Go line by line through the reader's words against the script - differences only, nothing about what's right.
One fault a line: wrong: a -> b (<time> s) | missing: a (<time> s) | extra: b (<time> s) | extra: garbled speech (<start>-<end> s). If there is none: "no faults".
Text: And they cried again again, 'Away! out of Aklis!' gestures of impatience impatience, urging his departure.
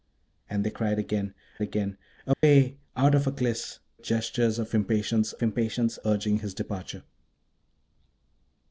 no faults